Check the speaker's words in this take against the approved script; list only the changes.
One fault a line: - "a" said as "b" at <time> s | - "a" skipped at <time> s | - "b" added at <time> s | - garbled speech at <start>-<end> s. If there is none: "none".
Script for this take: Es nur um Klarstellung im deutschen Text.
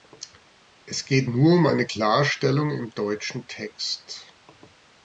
- "geht" added at 1.1 s
- "eine" added at 1.6 s